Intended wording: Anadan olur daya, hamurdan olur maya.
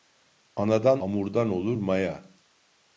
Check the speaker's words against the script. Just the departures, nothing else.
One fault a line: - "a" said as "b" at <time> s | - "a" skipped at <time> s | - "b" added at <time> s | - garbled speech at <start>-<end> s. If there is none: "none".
- "olur daya" skipped at 1.0 s